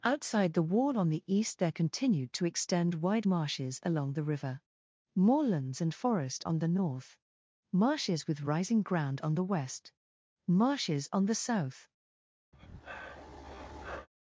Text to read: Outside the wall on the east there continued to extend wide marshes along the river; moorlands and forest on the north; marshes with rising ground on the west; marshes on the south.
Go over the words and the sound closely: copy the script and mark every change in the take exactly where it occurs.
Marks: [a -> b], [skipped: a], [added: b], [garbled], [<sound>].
Outside the wall on the east there continued to extend wide marshes along the river; moorlands and forest on the north; marshes with rising ground on the west; marshes on the south. [breath]